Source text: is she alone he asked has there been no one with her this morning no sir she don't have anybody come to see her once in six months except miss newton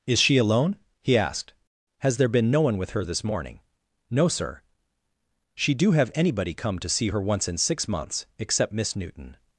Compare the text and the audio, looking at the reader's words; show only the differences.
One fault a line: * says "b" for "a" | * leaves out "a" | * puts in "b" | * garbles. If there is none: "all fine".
* says "do" for "don't"